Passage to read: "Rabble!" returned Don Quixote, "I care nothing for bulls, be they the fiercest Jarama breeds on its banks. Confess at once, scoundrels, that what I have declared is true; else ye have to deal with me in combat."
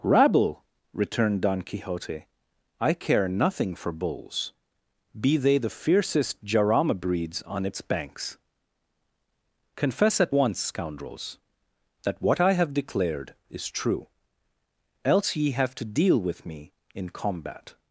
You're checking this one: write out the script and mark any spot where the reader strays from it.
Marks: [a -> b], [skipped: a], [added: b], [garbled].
"Rabble!" returned Don Quixote, "I care nothing for bulls, be they the fiercest Jarama breeds on its banks. Confess at once, scoundrels, that what I have declared is true; else ye have to deal with me in combat."